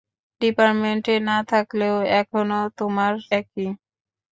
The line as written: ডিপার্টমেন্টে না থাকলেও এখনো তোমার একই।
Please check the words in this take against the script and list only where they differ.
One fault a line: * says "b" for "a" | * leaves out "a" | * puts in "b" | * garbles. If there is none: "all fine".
all fine